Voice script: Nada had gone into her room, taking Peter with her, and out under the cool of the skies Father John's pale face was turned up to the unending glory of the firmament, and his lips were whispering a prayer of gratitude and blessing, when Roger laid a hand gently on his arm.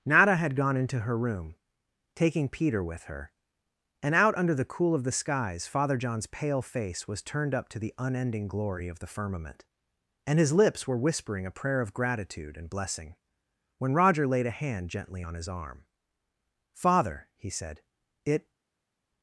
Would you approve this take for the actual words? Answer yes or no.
no